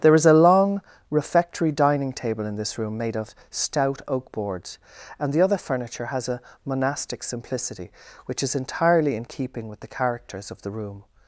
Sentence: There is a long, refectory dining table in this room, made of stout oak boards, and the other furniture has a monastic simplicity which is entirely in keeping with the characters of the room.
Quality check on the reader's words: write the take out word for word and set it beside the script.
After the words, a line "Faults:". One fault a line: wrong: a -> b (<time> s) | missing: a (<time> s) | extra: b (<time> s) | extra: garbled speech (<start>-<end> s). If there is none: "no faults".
There is a long, refectory dining table in this room, made of stout oak boards, and the other furniture has a monastic simplicity which is entirely in keeping with the characters of the room.
Faults:
no faults